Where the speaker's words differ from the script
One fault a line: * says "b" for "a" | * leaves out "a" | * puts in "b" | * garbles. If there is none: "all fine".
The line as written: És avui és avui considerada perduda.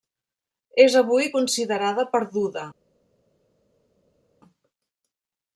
* leaves out "és avui"